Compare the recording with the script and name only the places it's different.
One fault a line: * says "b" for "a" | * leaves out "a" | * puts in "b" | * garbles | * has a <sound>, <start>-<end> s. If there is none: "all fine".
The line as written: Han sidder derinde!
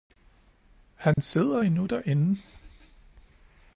* has a dropout, 1.1-1.2 s
* puts in "endnu"